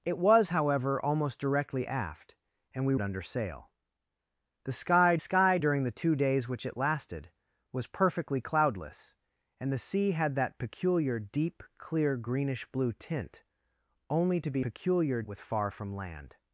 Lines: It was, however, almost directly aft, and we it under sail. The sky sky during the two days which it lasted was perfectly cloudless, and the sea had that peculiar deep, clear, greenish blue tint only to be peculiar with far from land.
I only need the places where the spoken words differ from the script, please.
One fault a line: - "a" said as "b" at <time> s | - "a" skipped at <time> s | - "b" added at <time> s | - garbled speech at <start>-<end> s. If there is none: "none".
none